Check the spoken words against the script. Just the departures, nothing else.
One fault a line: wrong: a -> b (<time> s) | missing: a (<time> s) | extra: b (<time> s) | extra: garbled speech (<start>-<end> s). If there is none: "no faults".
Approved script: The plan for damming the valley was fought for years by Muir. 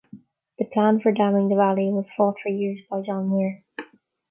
extra: John (3.0 s)